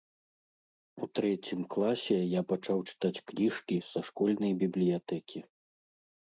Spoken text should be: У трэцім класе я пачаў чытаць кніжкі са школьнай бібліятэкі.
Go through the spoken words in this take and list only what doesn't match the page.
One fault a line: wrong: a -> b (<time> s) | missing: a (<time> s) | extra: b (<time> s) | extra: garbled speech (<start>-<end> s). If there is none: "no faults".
no faults